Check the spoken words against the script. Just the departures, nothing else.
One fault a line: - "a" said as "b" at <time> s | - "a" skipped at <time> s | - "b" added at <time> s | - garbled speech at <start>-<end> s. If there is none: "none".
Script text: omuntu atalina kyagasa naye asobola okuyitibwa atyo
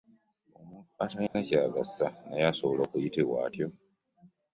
none